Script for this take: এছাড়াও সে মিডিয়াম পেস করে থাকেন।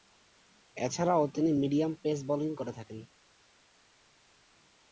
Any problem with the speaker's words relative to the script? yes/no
yes